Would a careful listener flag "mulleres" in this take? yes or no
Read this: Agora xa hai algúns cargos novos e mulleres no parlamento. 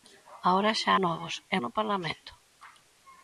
yes